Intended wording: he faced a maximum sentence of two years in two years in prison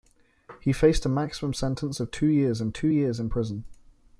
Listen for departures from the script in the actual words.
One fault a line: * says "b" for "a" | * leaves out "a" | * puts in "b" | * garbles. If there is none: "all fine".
all fine